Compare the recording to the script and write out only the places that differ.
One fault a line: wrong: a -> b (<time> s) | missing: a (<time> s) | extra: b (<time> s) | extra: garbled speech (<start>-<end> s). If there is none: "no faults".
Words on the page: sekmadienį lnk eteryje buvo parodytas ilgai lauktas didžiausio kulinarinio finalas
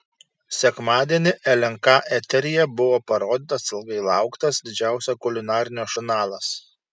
no faults